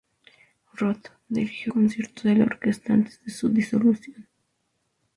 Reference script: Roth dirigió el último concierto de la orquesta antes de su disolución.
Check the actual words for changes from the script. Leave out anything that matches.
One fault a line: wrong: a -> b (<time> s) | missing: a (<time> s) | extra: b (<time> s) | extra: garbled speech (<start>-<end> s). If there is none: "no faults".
missing: el último (1.7 s)